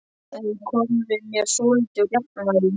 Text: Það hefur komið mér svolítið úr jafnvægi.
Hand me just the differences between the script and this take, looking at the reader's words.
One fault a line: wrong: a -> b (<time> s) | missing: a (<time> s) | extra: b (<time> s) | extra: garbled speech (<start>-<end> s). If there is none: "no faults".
no faults